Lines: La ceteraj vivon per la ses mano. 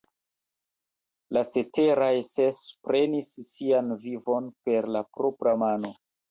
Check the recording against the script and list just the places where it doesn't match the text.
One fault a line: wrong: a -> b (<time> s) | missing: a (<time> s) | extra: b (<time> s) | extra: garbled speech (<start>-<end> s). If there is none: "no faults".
extra: ses prenis sian (2.3 s)
wrong: ses -> propra (5.2 s)